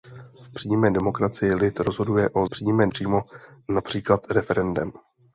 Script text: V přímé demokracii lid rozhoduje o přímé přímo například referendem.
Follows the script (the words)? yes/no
yes